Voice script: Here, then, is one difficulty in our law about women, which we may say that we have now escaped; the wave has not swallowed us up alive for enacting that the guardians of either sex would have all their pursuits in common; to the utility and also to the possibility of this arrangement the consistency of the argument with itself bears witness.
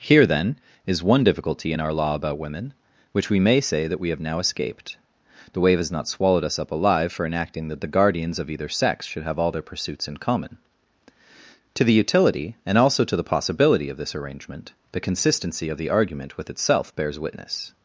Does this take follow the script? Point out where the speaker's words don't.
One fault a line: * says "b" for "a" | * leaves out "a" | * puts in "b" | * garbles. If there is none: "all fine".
* says "should" for "would"